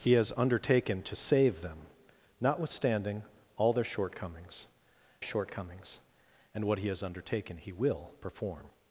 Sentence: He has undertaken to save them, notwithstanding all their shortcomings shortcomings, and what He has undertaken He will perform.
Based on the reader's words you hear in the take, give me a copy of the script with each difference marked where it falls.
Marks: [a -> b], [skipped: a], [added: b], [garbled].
He has undertaken to save them, notwithstanding all their shortcomings shortcomings, and what He has undertaken He will perform.